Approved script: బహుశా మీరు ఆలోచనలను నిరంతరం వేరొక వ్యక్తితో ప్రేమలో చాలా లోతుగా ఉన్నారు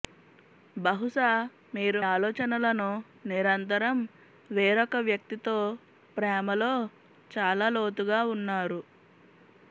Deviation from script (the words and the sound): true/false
false